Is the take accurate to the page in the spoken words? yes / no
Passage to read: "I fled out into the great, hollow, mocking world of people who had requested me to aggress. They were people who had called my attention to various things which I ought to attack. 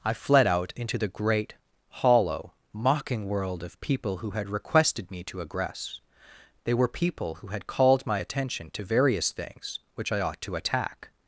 yes